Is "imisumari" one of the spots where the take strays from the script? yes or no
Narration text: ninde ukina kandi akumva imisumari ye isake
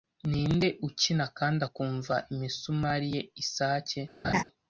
no